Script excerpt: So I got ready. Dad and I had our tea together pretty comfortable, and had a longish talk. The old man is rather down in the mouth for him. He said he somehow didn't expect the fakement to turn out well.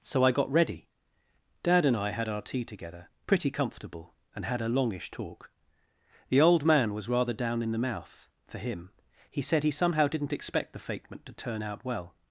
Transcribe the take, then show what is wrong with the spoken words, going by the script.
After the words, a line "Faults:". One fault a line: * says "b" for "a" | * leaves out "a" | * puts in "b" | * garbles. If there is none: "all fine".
So I got ready. Dad and I had our tea together pretty comfortable, and had a longish talk. The old man was rather down in the mouth for him. He said he somehow didn't expect the fakement to turn out well.
Faults:
* says "was" for "is"